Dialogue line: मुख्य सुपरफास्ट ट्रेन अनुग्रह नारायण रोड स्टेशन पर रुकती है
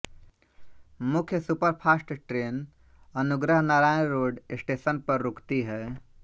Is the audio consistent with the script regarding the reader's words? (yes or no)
yes